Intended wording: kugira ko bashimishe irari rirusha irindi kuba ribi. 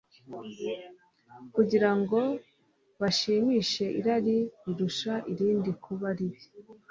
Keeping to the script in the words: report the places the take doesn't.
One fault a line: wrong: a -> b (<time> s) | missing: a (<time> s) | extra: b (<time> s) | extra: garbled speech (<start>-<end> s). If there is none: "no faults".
wrong: ko -> ngo (2.0 s)